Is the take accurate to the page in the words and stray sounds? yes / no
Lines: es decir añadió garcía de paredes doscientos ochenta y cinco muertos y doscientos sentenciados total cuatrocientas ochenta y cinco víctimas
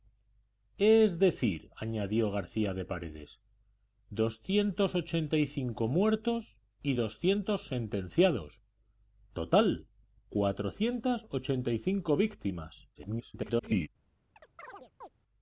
no